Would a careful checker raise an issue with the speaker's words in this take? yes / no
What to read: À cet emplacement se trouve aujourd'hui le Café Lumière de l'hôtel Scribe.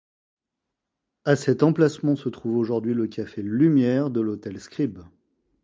no